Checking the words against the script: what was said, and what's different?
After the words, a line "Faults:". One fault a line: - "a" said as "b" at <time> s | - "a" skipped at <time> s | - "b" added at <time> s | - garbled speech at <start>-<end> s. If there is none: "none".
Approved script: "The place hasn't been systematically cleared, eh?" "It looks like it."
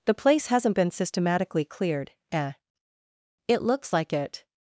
"The place hasn't been systematically cleared, eh?" "It looks like it."
Faults:
none